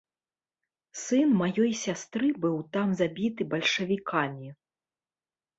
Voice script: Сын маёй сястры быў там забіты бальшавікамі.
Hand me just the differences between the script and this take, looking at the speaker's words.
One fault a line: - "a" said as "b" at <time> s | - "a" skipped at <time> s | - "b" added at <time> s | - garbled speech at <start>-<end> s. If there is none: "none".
none